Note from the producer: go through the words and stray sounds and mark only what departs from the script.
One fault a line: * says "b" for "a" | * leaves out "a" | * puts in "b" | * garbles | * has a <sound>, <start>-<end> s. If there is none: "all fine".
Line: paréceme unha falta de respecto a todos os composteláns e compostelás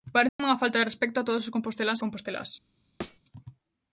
* has a dropout, 0.3-0.4 s
* leaves out "e"
* has a thud, 3.0-3.2 s